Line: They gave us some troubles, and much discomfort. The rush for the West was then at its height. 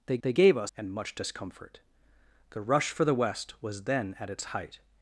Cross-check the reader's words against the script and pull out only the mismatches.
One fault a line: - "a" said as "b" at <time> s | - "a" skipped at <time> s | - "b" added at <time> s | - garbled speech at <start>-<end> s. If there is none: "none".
- "they" added at 0.2 s
- "some troubles" skipped at 0.7 s